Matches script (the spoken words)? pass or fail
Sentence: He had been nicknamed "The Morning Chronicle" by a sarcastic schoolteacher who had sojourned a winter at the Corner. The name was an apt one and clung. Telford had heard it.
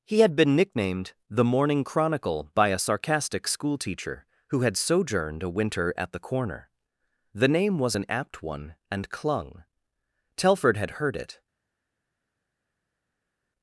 pass